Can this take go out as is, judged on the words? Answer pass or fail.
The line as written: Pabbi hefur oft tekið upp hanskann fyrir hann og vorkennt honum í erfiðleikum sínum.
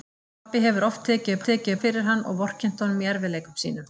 fail